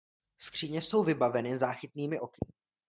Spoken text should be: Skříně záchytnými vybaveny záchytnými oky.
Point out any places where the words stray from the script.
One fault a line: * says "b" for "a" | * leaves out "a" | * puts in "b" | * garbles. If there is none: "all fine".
* says "jsou" for "záchytnými"